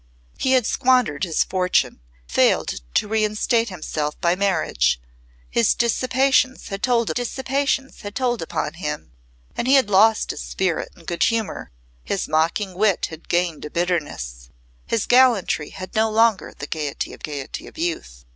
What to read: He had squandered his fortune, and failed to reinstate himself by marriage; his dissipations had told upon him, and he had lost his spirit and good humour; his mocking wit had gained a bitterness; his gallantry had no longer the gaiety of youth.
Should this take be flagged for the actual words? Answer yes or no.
yes